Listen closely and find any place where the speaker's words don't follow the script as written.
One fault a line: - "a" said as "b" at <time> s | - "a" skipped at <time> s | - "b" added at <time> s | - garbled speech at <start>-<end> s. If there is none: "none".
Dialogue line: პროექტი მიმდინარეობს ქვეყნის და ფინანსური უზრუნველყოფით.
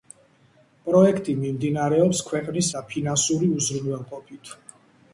none